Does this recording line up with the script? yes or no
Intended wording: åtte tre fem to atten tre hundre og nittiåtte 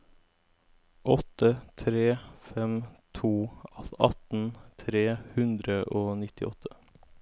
yes